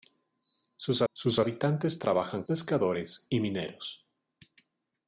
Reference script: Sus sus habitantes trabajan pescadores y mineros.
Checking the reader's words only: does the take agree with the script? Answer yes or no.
yes